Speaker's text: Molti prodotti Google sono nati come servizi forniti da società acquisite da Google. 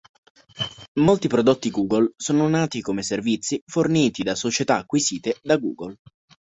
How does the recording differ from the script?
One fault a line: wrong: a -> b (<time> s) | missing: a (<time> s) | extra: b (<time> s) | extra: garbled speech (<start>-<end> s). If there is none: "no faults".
no faults